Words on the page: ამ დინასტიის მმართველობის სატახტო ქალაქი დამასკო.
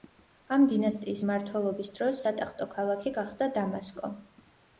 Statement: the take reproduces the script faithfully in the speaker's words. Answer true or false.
false